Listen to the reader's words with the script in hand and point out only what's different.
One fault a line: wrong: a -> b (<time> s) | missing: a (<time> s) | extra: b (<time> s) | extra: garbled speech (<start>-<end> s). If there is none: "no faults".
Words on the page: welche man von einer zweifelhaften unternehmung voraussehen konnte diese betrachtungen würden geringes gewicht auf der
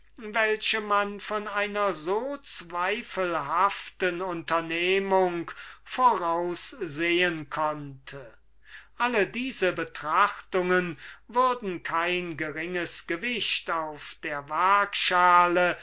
extra: so (1.9 s)
extra: alle (9.0 s)
extra: kein (11.8 s)